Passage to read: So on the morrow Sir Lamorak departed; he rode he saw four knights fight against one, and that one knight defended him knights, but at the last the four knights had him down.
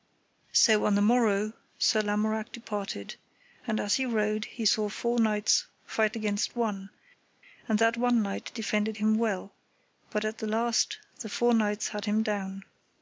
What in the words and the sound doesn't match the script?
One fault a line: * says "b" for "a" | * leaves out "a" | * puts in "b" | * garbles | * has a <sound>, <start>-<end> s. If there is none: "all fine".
* puts in "and as"
* says "well" for "knights"